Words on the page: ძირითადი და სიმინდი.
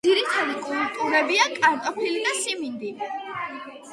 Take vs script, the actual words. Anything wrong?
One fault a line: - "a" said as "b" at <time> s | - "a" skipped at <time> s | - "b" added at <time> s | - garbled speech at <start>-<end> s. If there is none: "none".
- "კულტურებია კარტოფილი" added at 0.7 s